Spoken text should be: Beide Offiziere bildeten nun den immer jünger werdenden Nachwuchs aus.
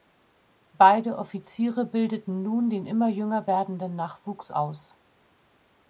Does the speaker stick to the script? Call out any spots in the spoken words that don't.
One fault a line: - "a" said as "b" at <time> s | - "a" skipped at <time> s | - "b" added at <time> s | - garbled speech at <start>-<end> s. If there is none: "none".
none